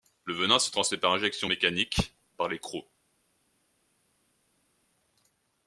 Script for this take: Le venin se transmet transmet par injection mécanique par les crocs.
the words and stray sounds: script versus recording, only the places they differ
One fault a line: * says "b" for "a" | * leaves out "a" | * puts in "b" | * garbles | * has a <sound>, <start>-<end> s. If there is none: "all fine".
* leaves out "transmet"